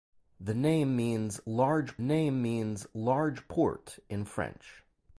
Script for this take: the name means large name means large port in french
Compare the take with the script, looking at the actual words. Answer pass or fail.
pass